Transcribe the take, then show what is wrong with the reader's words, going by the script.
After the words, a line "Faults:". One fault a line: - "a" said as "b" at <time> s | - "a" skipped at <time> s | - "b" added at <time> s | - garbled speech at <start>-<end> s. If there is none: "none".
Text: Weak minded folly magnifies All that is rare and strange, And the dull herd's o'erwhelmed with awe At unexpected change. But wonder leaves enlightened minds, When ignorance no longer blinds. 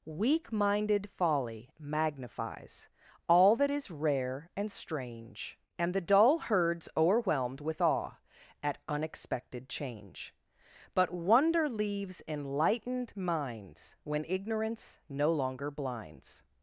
Weak minded folly magnifies All that is rare and strange, And the dull herd's o'erwhelmed with awe At unexpected change. But wonder leaves enlightened minds, When ignorance no longer blinds.
Faults:
none